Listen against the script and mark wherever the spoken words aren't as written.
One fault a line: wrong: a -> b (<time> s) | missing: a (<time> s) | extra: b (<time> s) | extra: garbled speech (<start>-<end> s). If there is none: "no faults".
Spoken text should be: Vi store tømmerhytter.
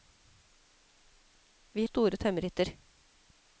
no faults